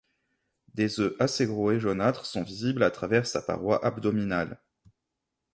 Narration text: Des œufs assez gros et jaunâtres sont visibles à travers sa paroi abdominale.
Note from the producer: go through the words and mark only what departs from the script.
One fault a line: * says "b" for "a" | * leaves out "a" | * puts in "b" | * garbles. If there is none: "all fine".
all fine